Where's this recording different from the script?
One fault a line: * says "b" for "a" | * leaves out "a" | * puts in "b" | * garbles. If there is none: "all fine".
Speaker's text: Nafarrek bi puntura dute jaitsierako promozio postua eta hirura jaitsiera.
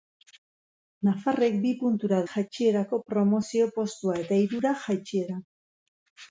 * leaves out "dute"